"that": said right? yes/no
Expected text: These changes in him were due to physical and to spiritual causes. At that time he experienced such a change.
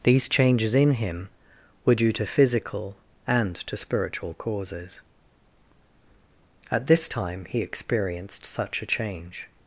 no